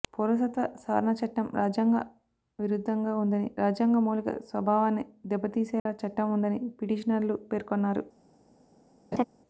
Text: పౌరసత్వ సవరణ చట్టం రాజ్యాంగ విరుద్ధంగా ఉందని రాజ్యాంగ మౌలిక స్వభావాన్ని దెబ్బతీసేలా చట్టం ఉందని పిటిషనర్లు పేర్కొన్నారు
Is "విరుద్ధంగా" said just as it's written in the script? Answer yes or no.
yes